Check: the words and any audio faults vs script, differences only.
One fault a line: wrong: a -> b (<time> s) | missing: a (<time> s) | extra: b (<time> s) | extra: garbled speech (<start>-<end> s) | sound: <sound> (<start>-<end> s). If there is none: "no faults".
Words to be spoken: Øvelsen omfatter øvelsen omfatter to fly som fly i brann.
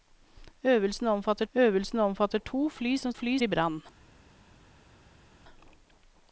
no faults